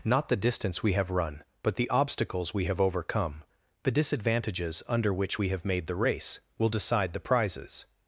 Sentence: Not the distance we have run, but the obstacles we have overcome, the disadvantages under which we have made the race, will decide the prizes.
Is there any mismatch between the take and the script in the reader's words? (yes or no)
no